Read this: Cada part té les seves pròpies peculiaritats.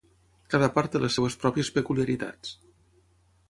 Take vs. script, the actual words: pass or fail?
pass